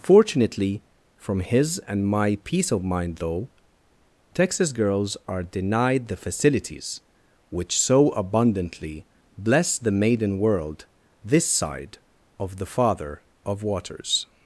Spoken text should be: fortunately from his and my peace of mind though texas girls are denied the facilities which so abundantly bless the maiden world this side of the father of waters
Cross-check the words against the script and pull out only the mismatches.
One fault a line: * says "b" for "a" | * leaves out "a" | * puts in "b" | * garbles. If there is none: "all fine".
all fine